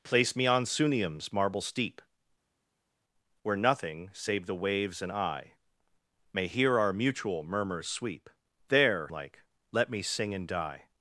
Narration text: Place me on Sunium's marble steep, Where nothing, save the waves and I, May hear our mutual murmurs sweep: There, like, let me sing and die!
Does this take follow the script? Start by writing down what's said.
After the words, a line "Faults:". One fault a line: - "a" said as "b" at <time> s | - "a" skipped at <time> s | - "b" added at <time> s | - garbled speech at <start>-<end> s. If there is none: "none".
Place me on Sunium's marble steep, Where nothing, save the waves and I, May hear our mutual murmurs sweep: There, like, let me sing and die!
Faults:
none